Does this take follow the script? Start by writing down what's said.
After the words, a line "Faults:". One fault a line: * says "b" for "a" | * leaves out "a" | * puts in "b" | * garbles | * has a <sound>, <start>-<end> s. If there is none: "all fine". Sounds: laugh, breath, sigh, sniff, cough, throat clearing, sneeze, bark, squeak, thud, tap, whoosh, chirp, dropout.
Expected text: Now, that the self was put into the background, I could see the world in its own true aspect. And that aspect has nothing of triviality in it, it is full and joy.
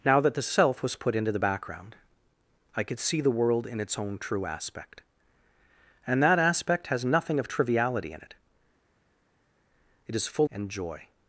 Now, that the self was put into the background, I could see the world in its own true aspect. And that aspect has nothing of triviality in it, it is full and joy.
Faults:
all fine